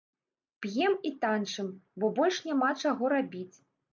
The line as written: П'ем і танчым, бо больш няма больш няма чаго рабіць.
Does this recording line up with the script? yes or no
no